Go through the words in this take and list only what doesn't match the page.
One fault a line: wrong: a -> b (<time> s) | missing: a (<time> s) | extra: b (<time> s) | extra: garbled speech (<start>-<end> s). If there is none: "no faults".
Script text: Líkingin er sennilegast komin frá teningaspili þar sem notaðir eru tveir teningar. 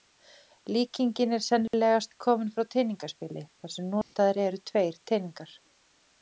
no faults